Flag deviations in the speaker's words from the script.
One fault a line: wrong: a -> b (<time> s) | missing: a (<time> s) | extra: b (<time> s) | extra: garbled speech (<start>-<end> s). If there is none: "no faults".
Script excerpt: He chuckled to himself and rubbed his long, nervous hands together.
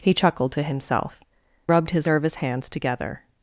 missing: and (1.2 s)
missing: long (2.1 s)